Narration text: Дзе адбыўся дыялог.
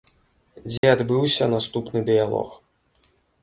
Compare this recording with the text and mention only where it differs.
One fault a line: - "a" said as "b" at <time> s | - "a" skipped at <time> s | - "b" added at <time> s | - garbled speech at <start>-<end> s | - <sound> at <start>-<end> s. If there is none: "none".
- dropout at 0.8-0.8 s
- "наступны" added at 1.6 s